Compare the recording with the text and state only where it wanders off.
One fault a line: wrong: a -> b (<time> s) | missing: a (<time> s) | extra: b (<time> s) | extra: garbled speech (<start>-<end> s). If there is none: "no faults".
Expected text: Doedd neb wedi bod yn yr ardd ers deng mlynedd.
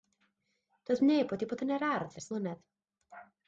missing: deng (2.3 s)